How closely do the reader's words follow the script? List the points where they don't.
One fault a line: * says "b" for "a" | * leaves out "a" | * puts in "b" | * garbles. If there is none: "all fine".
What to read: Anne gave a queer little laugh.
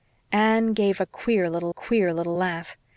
* puts in "queer little"